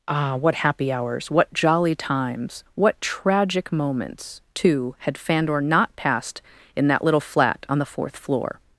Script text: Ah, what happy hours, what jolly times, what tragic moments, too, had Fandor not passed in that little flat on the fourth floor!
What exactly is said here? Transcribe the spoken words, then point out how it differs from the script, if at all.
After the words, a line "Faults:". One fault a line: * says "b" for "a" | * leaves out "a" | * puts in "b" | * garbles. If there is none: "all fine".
Ah, what happy hours, what jolly times, what tragic moments, too, had Fandor not passed in that little flat on the fourth floor!
Faults:
all fine